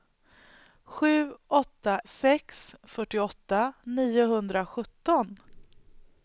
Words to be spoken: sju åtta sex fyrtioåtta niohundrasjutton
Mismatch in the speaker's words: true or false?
false